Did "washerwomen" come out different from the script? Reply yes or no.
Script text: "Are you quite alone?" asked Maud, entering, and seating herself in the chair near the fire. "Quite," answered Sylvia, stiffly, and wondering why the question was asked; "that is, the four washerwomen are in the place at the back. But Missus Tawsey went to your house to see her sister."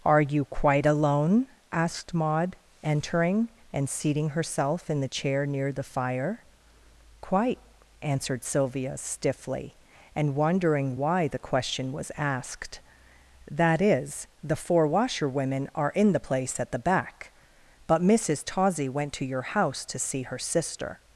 no